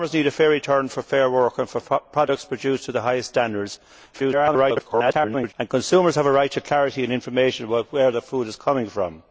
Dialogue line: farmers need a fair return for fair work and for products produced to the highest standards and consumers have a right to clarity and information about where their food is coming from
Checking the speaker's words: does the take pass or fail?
fail